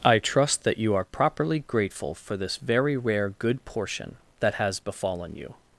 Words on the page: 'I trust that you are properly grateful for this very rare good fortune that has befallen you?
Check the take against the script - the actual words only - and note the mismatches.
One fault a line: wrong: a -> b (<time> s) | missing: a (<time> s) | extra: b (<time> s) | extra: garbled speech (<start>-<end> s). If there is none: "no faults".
wrong: fortune -> portion (3.7 s)